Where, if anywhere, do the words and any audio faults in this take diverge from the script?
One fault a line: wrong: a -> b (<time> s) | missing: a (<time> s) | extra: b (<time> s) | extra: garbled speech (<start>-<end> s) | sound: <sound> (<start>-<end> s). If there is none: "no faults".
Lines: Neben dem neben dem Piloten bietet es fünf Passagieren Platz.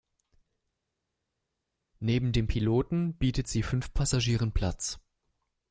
missing: neben dem (2.5 s)
wrong: es -> sie (3.5 s)